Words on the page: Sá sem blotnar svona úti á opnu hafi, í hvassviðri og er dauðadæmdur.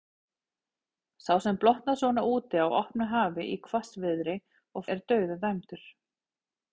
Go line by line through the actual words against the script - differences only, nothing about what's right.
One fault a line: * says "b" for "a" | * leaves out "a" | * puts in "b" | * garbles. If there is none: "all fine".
all fine